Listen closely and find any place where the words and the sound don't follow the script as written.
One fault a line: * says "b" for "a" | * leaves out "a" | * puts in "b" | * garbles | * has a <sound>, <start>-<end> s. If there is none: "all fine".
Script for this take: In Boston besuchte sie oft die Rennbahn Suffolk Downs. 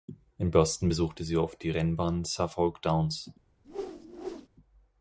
* has a whoosh, 3.6-4.5 s